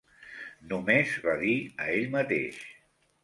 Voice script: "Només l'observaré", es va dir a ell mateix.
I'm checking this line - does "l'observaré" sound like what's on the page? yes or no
no